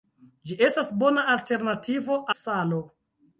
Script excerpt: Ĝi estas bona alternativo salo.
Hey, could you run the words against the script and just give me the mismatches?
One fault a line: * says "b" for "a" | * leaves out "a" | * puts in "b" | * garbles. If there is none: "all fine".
all fine